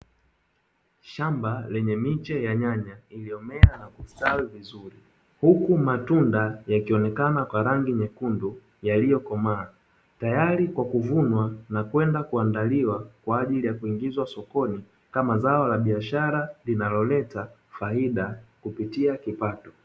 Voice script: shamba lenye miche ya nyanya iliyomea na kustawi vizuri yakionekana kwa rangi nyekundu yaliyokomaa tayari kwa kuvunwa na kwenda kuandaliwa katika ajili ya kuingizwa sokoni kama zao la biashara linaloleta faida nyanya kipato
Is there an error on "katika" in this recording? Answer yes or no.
yes